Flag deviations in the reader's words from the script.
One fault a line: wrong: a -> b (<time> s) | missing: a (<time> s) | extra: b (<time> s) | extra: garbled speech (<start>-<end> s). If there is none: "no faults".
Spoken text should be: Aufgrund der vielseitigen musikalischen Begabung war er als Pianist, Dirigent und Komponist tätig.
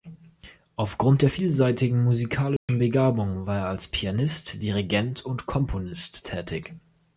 no faults